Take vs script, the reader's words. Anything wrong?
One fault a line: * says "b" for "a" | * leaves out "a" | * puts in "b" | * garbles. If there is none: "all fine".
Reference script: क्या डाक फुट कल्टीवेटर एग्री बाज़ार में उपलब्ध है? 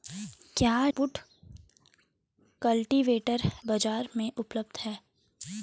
* leaves out "डाक"
* leaves out "एग्री"